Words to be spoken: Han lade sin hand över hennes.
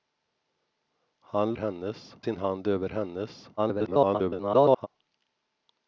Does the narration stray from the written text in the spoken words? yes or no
yes